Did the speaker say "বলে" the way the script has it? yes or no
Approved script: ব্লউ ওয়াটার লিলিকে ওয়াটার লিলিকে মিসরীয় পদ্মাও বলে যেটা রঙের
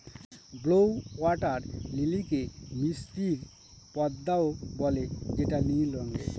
yes